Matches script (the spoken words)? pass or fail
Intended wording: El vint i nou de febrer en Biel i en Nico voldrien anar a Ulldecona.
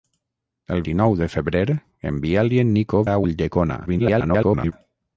fail